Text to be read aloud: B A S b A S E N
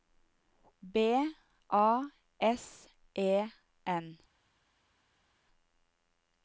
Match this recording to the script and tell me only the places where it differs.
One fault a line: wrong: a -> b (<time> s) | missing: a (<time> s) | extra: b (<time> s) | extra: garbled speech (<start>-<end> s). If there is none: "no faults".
missing: b A S (2.9 s)